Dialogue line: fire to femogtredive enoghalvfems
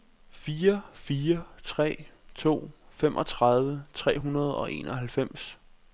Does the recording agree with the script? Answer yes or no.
no